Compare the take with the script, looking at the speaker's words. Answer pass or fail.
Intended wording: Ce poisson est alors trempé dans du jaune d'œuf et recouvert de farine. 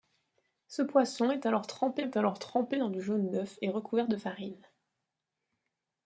fail